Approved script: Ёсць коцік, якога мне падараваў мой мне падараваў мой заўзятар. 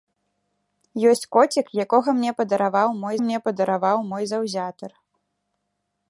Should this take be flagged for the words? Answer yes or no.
no